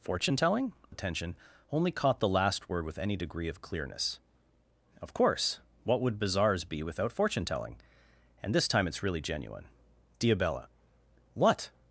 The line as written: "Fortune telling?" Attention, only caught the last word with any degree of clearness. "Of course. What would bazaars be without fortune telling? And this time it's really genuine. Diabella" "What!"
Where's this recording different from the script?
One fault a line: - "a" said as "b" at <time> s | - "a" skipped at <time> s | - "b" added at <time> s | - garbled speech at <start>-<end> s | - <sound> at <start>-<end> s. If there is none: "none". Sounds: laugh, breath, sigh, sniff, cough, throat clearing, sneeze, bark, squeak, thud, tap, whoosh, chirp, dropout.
none